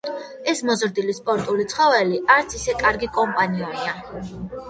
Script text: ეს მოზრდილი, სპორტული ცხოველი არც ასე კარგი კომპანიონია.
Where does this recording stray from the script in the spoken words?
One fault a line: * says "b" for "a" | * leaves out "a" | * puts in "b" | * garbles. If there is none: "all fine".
* says "ისე" for "ასე"